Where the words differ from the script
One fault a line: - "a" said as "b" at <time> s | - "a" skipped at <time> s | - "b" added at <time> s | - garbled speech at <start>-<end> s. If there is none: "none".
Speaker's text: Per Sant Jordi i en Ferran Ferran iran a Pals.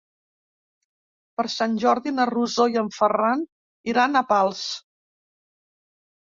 - "na Rosó" added at 2.1 s
- "Ferran" skipped at 3.5 s